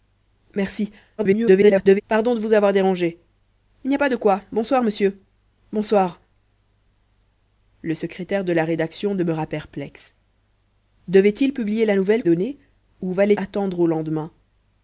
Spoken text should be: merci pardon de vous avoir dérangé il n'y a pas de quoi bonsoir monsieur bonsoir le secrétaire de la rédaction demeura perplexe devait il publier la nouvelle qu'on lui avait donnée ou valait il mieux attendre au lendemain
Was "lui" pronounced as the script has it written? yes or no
no